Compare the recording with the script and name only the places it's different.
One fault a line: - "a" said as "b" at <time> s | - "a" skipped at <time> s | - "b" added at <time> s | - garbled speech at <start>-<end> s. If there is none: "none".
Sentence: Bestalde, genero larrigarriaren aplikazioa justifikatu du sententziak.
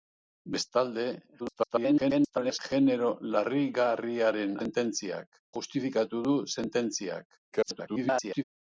- garbled speech at 1.4-2.6 s
- "aplikazioa" said as "sententziak" at 4.6 s
- garbled speech at 7.5-8.4 s